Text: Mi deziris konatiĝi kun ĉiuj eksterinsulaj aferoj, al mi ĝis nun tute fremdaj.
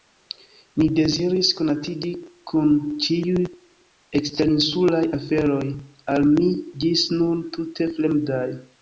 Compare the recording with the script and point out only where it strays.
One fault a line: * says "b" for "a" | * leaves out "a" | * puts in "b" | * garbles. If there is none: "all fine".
all fine